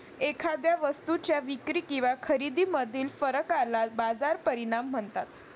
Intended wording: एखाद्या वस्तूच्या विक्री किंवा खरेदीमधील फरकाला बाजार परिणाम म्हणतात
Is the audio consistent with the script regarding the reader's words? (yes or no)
yes